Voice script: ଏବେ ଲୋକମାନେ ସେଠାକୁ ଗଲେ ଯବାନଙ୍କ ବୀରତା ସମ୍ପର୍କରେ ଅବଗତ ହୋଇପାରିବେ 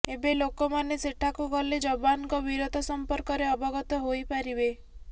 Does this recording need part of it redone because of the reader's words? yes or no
no